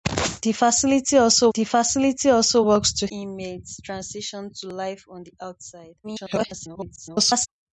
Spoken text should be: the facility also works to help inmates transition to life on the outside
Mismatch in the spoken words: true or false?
true